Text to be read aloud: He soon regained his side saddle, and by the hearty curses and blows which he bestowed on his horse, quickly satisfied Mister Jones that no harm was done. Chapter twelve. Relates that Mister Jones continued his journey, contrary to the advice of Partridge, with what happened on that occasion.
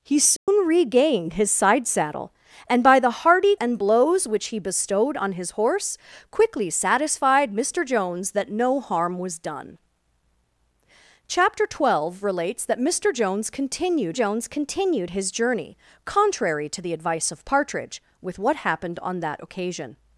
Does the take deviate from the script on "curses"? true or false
true